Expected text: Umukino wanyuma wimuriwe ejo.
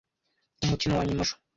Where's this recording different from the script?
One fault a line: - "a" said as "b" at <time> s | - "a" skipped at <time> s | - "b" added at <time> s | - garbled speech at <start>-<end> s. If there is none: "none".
- "wimuriwe" skipped at 1.2 s